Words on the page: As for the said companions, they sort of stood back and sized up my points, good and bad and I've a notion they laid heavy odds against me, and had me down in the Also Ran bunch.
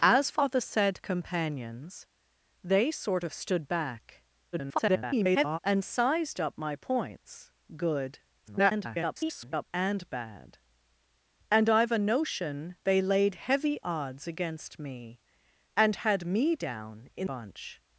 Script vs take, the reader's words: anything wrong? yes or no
yes